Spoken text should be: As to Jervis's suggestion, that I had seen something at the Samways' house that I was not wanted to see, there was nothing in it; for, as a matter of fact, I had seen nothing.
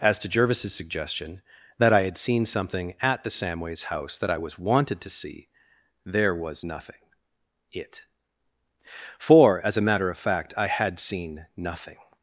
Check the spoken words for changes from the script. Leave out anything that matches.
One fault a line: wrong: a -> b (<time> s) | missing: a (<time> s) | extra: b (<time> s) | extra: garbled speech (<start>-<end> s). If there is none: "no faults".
missing: not (4.6 s)
missing: in (6.9 s)